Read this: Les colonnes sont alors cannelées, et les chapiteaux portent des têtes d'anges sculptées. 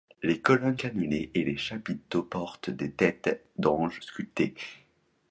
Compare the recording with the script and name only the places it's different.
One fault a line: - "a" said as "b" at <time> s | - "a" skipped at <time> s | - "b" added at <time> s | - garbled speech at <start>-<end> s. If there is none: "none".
- "sont alors" skipped at 0.8 s